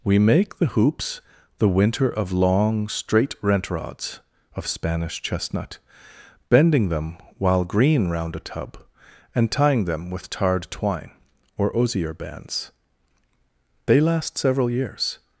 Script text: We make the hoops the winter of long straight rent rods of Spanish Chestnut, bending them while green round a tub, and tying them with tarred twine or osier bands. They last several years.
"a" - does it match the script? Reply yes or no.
yes